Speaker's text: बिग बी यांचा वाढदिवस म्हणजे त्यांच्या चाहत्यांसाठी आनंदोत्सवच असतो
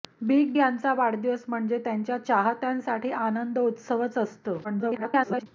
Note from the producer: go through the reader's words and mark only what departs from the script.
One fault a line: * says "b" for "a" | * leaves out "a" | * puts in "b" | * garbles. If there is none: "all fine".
* leaves out "बी"
* garbles